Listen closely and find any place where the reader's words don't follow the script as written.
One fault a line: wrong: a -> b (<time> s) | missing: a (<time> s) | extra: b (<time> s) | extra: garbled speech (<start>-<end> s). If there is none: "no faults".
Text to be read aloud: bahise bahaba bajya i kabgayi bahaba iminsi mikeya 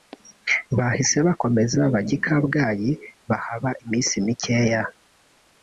wrong: bahaba -> bakomeza (1.3 s)